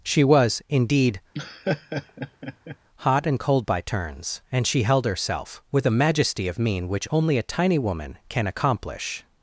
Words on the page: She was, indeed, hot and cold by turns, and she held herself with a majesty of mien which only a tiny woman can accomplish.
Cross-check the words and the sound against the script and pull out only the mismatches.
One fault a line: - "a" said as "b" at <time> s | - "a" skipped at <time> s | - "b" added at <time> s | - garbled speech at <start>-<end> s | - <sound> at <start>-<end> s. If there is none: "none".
- laugh at 1.3-2.8 s